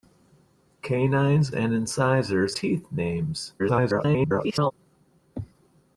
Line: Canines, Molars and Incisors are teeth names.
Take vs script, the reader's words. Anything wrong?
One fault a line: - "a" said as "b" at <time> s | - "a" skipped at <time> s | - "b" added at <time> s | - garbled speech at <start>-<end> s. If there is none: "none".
- "Molars" skipped at 1.5 s
- "are" skipped at 2.6 s
- garbled speech at 3.6-4.7 s